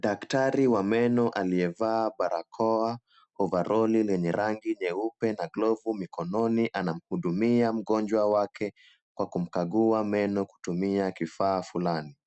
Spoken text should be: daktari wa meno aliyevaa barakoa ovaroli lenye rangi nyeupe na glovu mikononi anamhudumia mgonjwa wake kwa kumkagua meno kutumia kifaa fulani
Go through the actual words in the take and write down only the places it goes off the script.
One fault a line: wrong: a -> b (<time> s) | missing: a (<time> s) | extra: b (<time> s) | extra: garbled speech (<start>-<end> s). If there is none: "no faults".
no faults